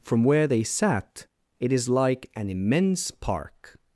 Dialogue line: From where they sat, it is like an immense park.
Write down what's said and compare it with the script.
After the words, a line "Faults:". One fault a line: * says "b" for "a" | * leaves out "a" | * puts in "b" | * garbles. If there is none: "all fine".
From where they sat, it is like an immense park.
Faults:
all fine